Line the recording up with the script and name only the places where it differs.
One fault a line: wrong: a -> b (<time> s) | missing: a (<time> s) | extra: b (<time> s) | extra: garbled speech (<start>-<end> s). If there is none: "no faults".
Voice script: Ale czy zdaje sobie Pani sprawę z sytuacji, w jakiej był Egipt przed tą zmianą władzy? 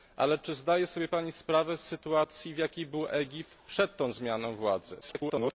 extra: garbled speech (5.0-5.5 s)